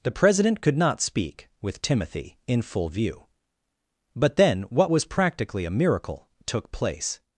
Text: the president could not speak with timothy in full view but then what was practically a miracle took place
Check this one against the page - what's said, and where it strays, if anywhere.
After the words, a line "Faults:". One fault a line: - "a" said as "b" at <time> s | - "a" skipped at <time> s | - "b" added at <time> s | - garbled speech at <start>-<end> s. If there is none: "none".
the president could not speak with timothy in full view but then what was practically a miracle took place
Faults:
none